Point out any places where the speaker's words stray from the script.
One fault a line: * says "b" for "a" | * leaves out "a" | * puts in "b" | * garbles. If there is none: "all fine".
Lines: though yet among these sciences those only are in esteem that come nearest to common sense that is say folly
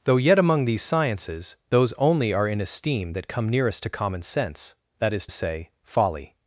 all fine